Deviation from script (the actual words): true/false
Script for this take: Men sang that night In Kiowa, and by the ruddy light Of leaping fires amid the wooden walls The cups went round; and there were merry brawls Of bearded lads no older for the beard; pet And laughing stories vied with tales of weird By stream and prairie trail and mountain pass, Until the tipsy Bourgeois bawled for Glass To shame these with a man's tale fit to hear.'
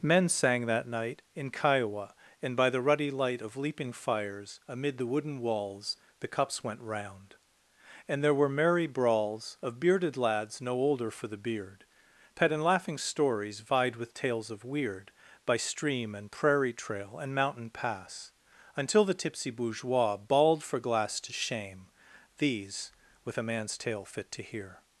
false